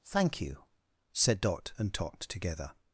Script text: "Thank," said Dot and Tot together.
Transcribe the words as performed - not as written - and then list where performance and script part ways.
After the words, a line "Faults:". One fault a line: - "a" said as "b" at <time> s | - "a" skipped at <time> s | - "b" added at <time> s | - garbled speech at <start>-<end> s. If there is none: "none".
"Thank you," said Dot and Tot together.
Faults:
- "you" added at 0.4 s